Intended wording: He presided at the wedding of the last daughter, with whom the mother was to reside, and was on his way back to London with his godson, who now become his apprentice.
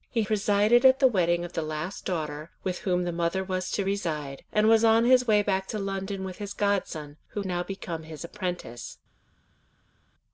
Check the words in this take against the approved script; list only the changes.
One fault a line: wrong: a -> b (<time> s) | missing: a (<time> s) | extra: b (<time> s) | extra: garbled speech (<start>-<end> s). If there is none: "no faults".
no faults